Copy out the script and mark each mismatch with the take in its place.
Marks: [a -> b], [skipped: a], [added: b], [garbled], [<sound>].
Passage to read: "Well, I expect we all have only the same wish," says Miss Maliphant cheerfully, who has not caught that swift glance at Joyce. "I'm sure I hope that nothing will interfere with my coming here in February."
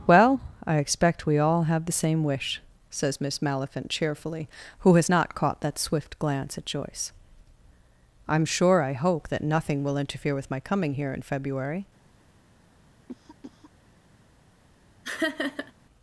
"Well, I expect we all have [skipped: only] the same wish," says Miss Maliphant cheerfully, who has not caught that swift glance at Joyce. "I'm sure I hope that nothing will interfere with my coming here in February." [cough] [laugh]